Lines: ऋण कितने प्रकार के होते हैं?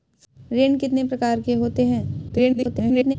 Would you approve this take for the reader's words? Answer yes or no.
no